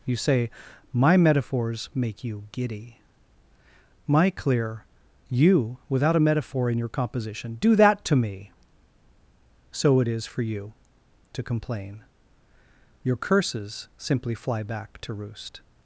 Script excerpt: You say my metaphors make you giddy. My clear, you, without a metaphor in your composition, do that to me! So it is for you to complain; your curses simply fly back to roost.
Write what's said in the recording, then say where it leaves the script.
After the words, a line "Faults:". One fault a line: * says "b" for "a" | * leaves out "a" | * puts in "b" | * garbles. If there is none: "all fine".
You say my metaphors make you giddy. My clear, you, without a metaphor in your composition, do that to me! So it is for you to complain; your curses simply fly back to roost.
Faults:
all fine